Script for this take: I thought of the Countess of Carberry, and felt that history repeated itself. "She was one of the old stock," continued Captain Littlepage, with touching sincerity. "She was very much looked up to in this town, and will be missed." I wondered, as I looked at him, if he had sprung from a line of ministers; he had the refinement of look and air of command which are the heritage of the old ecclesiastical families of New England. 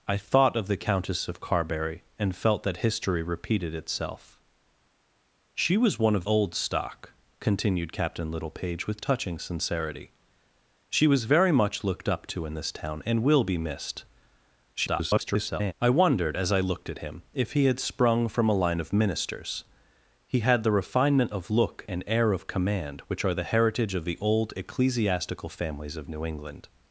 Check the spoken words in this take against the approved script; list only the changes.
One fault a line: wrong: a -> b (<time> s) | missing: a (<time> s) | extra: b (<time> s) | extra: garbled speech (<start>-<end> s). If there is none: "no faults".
missing: the (6.2 s)
extra: garbled speech (14.7-15.7 s)